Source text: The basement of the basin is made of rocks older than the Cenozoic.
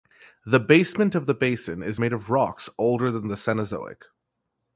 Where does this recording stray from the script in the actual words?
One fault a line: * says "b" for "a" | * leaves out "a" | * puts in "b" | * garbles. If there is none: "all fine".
all fine